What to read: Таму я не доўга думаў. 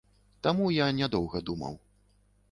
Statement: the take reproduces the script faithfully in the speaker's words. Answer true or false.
true